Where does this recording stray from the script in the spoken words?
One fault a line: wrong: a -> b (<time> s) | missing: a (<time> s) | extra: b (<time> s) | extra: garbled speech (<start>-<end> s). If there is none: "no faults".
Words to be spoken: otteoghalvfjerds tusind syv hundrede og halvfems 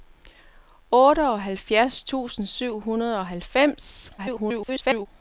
extra: garbled speech (4.2-5.1 s)